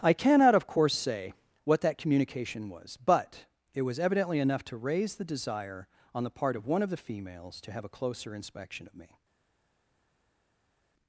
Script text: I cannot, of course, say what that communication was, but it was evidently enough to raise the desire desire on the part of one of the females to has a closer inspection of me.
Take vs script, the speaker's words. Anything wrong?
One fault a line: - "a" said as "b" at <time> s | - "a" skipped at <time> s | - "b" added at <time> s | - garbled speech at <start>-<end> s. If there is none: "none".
- "desire" skipped at 5.9 s
- "has" said as "have" at 7.7 s